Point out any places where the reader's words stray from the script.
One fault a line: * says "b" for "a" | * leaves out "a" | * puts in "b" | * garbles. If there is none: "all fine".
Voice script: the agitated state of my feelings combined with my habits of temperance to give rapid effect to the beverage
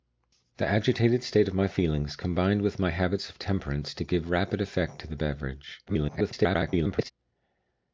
* garbles